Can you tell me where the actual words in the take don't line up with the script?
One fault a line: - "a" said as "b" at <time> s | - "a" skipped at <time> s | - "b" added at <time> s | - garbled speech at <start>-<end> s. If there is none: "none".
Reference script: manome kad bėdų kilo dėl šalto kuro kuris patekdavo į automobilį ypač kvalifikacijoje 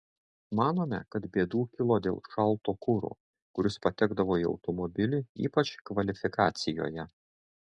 none